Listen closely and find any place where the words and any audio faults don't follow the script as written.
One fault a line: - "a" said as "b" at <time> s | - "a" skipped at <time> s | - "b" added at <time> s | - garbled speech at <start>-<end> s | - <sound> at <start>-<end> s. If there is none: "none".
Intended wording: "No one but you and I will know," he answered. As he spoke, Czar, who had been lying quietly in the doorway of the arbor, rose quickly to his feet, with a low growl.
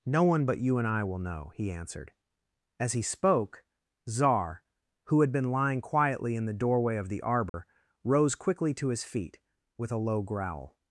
- dropout at 7.5-7.5 s